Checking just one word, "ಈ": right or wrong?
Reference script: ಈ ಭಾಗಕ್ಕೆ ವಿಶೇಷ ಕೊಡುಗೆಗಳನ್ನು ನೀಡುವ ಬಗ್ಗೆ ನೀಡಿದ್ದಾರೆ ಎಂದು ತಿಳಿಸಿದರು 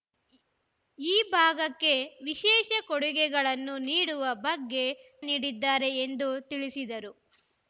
right